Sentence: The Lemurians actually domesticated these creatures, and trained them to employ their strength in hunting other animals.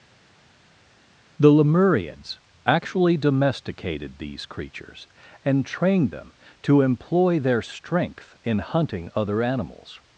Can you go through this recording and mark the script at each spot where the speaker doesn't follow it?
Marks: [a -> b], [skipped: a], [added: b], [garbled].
The Lemurians actually domesticated these creatures, and trained them to employ their strength in hunting other animals.